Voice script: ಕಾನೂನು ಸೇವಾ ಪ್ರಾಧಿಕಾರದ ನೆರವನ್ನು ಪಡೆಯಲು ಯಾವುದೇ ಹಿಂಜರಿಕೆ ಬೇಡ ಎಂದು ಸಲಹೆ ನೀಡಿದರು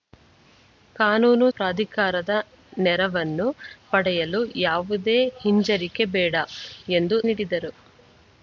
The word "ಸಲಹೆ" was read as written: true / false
false